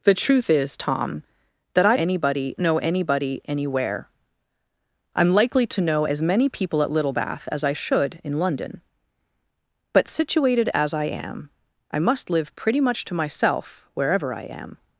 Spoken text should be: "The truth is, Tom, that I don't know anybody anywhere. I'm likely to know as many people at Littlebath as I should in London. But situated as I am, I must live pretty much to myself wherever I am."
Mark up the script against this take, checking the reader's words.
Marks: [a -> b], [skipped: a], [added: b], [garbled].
"The truth is, Tom, that I [don't -> anybody] know anybody anywhere. I'm likely to know as many people at Littlebath as I should in London. But situated as I am, I must live pretty much to myself wherever I am."